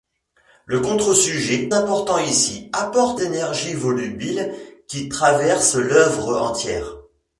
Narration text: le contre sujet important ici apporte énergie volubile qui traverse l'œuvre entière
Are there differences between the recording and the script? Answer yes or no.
no